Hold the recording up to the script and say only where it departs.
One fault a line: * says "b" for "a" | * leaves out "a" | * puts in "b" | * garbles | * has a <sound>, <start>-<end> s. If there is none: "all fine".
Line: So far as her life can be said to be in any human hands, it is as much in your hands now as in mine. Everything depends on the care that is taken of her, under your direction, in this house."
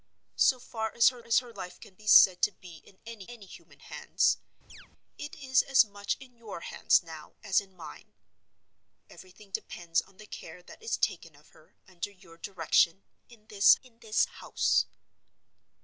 * puts in "as her"
* puts in "any"
* has a chirp, 4.7-4.9 s
* puts in "in this"